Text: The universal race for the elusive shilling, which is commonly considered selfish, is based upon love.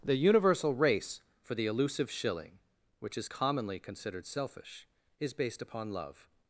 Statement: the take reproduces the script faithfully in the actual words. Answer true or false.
true